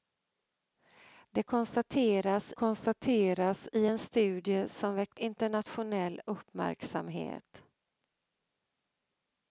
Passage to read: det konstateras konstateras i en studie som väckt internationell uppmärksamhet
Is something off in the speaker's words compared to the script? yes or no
no